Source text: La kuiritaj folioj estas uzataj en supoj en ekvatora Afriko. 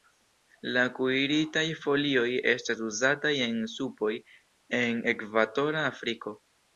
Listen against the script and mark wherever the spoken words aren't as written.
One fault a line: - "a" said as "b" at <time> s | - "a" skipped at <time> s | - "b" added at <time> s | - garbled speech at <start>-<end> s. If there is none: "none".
none